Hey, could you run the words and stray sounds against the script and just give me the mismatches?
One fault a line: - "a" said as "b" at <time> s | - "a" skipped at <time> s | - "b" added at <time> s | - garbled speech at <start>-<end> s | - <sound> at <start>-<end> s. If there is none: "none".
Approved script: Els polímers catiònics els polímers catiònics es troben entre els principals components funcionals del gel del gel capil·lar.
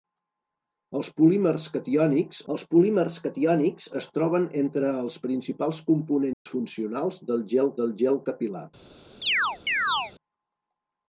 - dropout at 6.3-6.5 s
- chirp at 9.2-10.1 s